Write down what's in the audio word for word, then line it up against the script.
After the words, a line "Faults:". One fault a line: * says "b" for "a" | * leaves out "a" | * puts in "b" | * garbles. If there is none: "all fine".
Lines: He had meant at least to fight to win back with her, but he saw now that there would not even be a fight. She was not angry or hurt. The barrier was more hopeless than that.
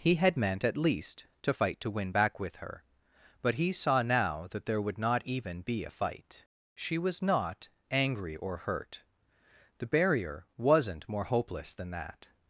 He had meant at least to fight to win back with her, but he saw now that there would not even be a fight. She was not angry or hurt. The barrier wasn't more hopeless than that.
Faults:
* says "wasn't" for "was"